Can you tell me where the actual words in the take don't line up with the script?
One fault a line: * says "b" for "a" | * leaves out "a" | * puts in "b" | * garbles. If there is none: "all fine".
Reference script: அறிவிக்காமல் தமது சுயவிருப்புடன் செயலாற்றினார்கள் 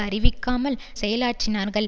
* leaves out "தமது சுயவிருப்புடன்"